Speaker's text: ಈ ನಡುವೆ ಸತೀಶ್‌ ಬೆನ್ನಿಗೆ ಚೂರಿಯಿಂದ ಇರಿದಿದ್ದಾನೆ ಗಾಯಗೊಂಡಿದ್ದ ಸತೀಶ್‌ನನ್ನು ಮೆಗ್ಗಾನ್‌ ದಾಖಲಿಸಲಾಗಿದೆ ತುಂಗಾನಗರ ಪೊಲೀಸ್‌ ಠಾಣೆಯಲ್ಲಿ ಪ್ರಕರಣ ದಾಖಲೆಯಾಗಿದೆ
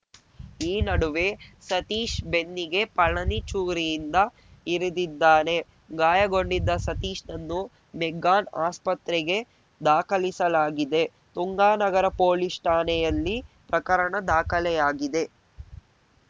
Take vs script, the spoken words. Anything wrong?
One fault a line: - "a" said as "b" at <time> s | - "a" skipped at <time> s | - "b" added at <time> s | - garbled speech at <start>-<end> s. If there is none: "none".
- "ಪಳನಿ" added at 3.0 s
- "ಆಸ್ಪತ್ರೆಗೆ" added at 8.7 s